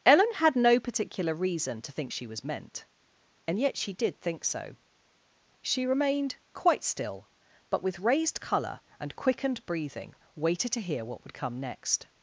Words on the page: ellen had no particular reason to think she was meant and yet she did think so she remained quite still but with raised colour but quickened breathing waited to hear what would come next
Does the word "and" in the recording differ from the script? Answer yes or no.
no